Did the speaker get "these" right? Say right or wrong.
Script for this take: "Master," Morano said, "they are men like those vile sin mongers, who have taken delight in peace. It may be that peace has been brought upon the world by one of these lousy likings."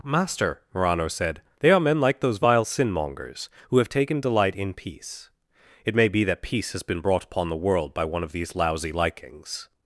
right